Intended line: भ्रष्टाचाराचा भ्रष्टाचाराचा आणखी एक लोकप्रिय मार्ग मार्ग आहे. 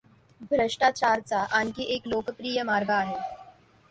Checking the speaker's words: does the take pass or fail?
fail